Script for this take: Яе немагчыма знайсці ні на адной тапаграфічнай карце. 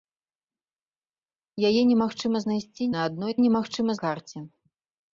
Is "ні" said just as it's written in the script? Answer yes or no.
no